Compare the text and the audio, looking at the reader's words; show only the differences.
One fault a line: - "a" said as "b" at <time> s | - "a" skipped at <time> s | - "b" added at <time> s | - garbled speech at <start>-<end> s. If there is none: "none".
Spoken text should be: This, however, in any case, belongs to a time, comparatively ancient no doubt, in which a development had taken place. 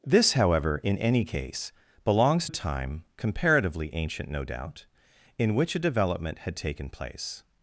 - "to" skipped at 2.5 s